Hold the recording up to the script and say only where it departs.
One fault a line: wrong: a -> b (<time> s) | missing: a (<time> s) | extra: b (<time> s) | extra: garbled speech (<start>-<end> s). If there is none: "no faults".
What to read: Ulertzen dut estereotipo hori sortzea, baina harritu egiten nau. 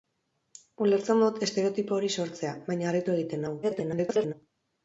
extra: garbled speech (3.6-4.3 s)